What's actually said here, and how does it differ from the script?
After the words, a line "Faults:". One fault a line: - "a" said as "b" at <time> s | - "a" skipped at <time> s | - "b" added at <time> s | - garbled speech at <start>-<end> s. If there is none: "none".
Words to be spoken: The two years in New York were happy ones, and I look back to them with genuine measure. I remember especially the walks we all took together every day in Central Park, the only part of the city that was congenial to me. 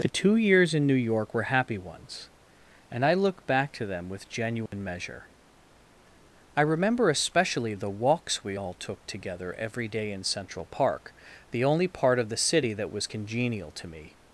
The two years in New York were happy ones, and I look back to them with genuine measure. I remember especially the walks we all took together every day in Central Park, the only part of the city that was congenial to me.
Faults:
none